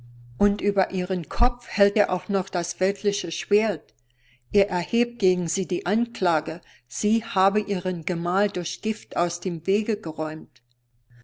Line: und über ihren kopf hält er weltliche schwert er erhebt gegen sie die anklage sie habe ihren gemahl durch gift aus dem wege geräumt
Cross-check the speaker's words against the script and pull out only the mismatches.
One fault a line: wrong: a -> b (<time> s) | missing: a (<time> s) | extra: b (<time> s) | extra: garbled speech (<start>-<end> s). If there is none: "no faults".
extra: auch noch das (2.1 s)